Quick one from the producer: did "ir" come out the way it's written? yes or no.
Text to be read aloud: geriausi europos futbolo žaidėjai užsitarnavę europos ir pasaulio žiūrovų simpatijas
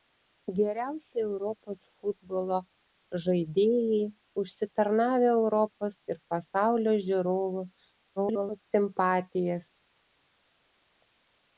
yes